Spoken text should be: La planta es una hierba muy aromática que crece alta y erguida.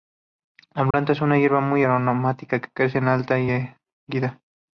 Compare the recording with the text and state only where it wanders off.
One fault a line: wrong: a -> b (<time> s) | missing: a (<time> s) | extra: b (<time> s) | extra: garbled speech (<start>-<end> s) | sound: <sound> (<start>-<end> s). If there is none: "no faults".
sound: dropout (0.9-0.9 s)